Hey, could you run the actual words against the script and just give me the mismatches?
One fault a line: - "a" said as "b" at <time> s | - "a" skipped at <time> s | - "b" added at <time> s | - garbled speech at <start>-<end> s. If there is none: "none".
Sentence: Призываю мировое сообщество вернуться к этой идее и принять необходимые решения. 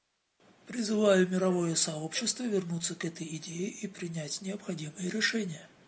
none